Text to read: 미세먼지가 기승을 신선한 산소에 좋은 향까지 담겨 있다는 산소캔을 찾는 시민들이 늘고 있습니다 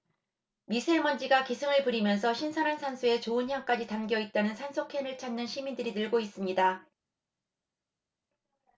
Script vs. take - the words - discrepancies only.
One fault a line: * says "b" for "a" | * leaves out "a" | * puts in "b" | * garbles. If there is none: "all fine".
* puts in "부리면서"